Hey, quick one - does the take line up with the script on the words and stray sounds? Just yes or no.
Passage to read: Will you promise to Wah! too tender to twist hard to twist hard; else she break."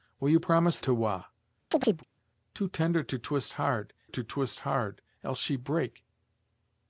no